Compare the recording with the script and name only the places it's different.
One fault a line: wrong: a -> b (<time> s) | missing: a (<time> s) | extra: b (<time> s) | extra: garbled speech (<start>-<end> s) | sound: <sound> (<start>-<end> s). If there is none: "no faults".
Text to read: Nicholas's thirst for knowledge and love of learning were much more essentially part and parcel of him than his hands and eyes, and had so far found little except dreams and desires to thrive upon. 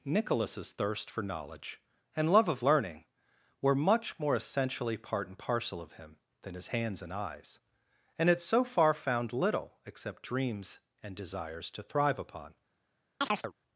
sound: chirp (13.2-13.5 s)